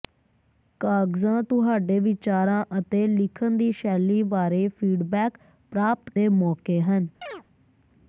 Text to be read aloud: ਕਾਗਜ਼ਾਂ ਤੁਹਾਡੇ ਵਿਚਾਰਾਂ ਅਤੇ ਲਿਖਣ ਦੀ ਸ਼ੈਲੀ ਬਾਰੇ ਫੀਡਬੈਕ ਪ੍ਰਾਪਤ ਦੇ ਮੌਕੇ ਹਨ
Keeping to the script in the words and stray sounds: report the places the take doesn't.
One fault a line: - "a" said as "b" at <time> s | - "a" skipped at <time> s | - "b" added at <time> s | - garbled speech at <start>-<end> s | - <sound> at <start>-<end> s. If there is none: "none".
- chirp at 7.2-7.4 s